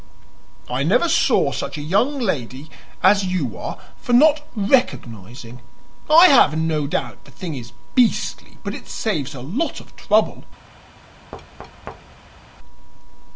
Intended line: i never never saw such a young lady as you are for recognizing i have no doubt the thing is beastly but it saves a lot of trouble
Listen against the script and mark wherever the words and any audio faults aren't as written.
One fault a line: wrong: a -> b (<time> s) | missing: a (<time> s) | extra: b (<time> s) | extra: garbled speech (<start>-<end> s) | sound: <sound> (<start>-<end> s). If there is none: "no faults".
missing: never (1.1 s)
extra: not (4.1 s)
sound: thud (11.3-12.4 s)